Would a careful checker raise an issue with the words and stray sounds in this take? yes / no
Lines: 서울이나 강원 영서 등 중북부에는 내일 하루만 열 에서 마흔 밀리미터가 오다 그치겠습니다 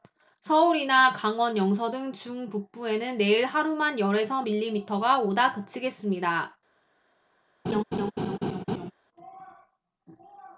yes